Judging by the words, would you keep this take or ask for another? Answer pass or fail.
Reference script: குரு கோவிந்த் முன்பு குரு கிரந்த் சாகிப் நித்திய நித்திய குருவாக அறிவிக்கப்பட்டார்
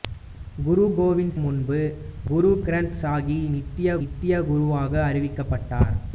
pass